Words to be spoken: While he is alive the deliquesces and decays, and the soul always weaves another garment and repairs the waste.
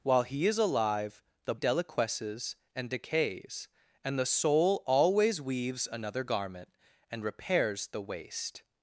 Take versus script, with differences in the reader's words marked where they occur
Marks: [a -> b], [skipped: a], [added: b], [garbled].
While he is alive the deliquesces and decays, and the soul always weaves another garment and repairs the waste.